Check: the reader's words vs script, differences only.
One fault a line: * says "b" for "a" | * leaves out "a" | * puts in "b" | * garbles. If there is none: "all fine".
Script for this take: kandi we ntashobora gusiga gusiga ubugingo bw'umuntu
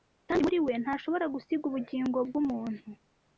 * puts in "muri"
* leaves out "gusiga"